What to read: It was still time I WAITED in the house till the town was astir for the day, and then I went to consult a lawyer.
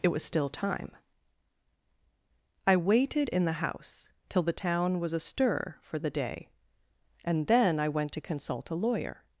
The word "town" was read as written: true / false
true